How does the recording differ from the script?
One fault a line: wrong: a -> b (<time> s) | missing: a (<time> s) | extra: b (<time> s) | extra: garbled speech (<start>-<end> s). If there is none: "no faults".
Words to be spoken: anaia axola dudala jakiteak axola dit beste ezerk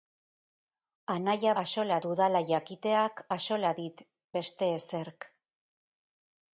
no faults